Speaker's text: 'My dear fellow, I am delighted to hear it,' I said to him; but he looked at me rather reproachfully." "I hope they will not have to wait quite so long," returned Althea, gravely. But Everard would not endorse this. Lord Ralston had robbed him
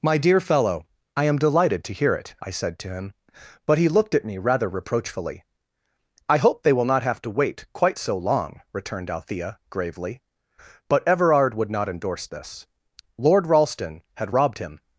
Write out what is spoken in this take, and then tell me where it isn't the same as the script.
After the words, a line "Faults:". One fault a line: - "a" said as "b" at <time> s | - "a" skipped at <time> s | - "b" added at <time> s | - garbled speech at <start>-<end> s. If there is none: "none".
'My dear fellow, I am delighted to hear it,' I said to him; but he looked at me rather reproachfully." "I hope they will not have to wait quite so long," returned Althea, gravely. But Everard would not endorse this. Lord Ralston had robbed him
Faults:
none